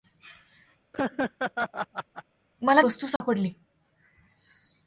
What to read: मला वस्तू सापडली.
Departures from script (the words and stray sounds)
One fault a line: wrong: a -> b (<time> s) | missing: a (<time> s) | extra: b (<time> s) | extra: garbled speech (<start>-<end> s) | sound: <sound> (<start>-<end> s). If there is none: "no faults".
sound: laugh (0.9-2.2 s)
sound: dropout (3.2-3.2 s)